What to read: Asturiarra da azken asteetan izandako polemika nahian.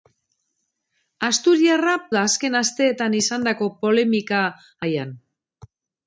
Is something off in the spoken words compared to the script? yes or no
no